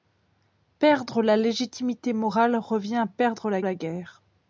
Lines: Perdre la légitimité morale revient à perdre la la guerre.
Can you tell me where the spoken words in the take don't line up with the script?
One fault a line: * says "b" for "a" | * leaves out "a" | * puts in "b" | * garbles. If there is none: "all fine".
all fine